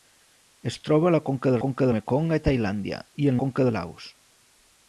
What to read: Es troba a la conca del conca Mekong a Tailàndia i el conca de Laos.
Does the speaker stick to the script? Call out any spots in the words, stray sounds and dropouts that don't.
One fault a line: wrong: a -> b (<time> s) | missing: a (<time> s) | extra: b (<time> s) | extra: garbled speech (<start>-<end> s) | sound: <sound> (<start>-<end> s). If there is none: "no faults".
no faults